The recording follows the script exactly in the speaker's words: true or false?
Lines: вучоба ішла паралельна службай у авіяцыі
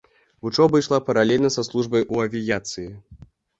false